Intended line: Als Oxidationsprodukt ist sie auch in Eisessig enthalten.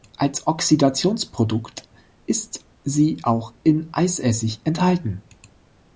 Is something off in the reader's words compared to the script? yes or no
no